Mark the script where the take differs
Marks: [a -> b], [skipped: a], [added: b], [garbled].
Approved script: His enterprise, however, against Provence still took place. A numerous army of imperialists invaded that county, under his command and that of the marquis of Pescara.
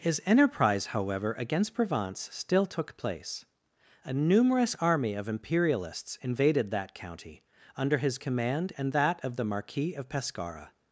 His enterprise, however, against Provence still took place. A numerous army of imperialists invaded that county, under his command and that of the marquis of Pescara.